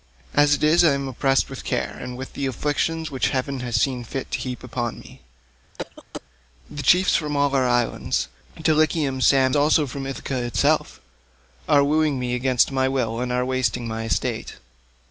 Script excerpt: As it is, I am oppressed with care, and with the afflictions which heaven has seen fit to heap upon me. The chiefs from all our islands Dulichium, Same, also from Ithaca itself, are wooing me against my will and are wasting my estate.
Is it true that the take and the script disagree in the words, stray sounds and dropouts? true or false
true